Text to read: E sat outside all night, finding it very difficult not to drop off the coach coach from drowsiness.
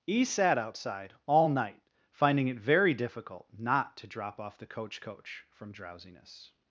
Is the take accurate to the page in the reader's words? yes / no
yes